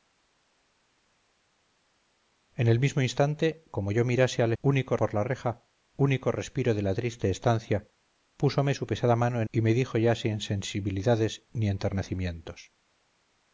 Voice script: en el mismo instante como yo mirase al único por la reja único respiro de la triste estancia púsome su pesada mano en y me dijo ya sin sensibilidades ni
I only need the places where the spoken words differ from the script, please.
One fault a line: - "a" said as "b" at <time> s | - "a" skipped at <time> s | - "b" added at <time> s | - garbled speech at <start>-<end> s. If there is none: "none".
none